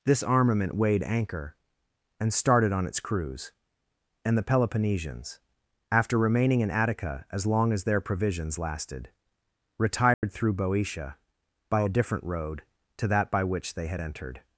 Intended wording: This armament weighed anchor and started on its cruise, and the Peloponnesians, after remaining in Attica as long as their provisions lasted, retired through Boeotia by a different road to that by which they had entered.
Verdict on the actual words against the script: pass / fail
pass